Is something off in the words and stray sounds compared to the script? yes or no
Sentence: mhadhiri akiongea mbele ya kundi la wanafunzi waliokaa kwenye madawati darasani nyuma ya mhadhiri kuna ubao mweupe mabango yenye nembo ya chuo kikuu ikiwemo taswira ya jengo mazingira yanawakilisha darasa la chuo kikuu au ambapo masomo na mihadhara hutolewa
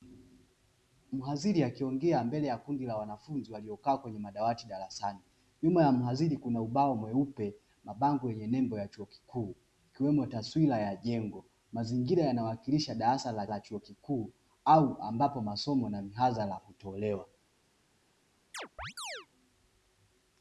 yes